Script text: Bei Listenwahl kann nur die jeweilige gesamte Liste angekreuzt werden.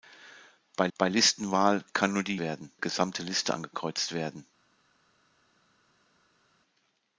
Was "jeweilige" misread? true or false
true